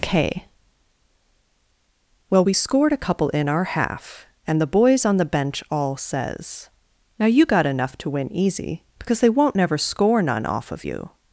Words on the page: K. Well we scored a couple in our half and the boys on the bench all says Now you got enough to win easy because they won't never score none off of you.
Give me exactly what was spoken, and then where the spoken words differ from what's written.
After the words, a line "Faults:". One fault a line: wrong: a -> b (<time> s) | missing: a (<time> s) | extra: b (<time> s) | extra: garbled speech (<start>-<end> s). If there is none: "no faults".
K. Well we scored a couple in our half and the boys on the bench all says Now you got enough to win easy because they won't never score none off of you.
Faults:
no faults